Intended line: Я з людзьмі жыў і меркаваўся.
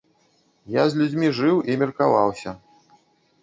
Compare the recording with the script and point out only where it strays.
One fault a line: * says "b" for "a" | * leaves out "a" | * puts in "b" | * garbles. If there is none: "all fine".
all fine